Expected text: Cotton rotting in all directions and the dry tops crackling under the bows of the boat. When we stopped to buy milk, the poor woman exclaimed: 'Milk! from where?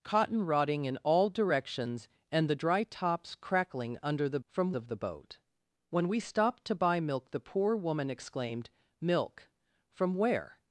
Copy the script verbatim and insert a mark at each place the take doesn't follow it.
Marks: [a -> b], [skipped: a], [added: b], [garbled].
Cotton rotting in all directions and the dry tops crackling under the [bows -> from] of the boat. When we stopped to buy milk, the poor woman exclaimed: 'Milk! from where?